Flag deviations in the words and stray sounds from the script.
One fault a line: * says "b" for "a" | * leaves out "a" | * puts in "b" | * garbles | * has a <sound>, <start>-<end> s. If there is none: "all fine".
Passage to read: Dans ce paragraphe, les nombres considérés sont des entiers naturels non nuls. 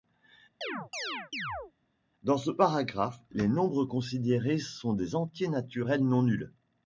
* has a chirp, 0.6-1.7 s